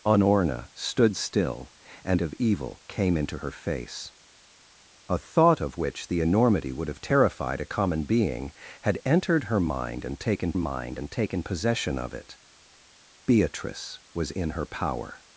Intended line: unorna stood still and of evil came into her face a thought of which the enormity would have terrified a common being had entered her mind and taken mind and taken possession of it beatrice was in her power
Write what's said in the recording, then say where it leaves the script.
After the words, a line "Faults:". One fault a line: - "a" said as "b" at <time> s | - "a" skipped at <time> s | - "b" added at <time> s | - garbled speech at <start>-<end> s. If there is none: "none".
unorna stood still and of evil came into her face a thought of which the enormity would have terrified a common being had entered her mind and taken mind and taken possession of it beatrice was in her power
Faults:
none